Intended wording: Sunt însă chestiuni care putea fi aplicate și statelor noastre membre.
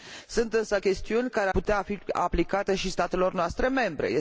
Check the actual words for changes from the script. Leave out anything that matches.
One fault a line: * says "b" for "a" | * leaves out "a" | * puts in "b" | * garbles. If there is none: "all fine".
all fine